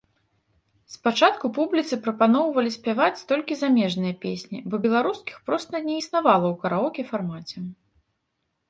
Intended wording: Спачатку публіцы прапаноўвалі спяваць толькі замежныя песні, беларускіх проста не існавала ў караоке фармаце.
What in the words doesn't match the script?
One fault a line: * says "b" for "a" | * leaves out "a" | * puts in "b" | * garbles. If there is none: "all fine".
* puts in "бо"